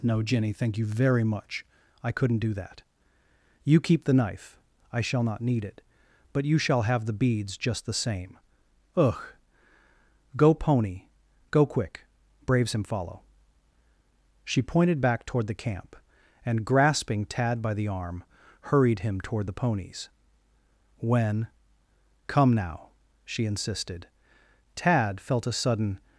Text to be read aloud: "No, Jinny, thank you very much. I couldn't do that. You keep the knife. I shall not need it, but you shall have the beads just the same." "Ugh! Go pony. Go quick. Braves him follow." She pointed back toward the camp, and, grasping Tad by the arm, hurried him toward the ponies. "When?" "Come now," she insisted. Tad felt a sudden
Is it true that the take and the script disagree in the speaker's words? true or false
false